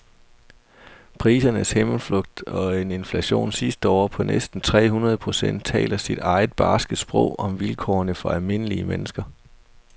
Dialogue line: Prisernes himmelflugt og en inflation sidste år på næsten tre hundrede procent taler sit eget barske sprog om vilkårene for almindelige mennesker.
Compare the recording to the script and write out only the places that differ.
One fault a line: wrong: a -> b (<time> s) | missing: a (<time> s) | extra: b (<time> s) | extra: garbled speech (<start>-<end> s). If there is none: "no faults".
no faults